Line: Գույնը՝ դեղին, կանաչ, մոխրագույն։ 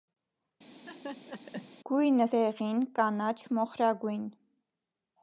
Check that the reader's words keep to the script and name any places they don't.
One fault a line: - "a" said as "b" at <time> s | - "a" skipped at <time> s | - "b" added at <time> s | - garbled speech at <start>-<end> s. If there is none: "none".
none